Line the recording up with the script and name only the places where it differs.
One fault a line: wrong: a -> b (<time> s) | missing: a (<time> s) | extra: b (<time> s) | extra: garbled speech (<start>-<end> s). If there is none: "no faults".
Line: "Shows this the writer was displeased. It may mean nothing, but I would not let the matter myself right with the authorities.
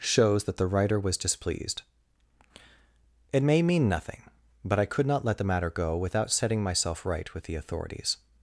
wrong: this -> that (0.5 s)
wrong: would -> could (4.8 s)
extra: go without setting (5.7 s)